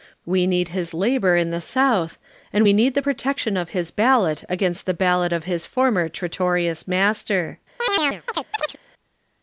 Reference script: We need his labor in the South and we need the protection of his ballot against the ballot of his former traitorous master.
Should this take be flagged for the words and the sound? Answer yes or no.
yes